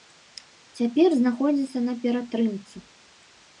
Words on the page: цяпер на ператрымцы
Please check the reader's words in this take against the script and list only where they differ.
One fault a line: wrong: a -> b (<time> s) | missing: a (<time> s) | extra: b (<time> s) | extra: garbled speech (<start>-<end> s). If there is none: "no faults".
extra: знаходзіцца (1.2 s)